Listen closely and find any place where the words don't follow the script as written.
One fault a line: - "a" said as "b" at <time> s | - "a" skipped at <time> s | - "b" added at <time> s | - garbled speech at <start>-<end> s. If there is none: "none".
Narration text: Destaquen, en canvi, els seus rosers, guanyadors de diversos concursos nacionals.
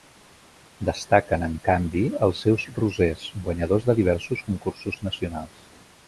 none